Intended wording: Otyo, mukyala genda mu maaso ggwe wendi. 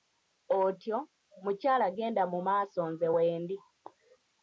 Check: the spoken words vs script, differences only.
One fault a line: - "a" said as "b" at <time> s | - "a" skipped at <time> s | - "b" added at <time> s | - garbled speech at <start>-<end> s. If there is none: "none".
- "ggwe" said as "nze" at 2.9 s